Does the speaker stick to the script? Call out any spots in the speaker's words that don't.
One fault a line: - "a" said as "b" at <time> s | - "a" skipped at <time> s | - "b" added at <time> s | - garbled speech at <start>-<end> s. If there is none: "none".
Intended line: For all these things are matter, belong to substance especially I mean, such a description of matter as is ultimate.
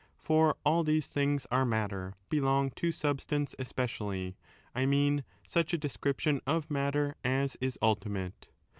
none